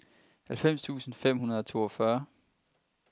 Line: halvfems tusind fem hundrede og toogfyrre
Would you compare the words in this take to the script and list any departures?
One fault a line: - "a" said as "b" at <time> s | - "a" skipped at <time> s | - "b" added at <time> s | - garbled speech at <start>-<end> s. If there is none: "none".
none